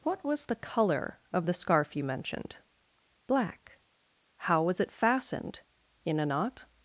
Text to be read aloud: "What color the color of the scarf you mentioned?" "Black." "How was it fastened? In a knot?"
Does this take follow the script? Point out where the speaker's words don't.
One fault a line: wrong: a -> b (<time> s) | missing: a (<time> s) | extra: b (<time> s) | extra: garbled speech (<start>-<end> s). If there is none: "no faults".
wrong: color -> was (0.2 s)